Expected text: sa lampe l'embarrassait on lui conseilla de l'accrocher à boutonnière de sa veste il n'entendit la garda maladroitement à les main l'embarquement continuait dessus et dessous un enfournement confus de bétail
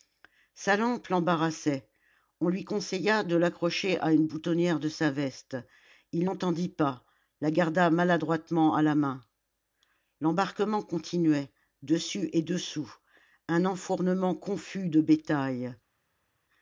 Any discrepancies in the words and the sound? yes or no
yes